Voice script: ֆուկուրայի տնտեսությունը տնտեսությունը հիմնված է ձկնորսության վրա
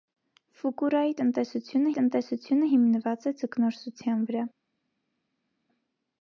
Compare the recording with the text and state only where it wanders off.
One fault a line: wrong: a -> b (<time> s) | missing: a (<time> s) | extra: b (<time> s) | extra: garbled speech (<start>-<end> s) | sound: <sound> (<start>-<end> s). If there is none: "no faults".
no faults